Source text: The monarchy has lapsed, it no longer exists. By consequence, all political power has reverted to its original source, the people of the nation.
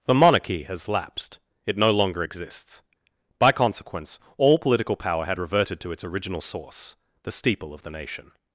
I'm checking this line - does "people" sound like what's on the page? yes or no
no